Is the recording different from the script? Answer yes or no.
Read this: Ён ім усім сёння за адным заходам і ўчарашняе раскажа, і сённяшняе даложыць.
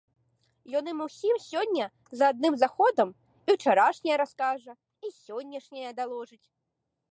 no